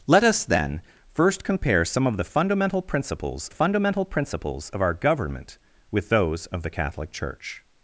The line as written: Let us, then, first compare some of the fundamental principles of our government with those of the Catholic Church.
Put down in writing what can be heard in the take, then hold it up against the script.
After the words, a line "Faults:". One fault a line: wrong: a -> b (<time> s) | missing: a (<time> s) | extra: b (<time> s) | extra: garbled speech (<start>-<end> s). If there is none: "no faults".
Let us, then, first compare some of the fundamental principles fundamental principles of our government with those of the Catholic Church.
Faults:
extra: fundamental principles (3.5 s)